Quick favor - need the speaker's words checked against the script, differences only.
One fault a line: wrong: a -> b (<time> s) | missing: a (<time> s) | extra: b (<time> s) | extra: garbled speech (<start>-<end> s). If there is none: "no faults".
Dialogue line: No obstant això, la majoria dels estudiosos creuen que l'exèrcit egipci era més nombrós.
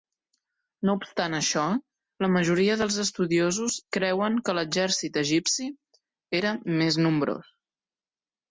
no faults